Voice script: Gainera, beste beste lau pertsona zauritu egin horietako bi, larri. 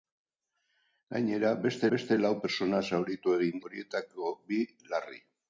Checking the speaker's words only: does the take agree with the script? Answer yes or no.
yes